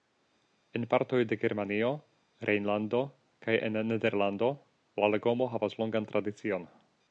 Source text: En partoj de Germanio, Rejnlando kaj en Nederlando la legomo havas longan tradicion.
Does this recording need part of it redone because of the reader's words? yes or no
no